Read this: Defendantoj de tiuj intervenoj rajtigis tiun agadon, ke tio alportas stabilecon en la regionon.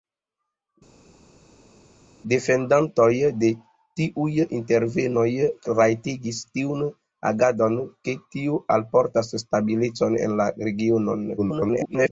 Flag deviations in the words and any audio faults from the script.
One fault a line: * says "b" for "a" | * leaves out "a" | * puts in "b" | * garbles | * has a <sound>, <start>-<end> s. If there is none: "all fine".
* garbles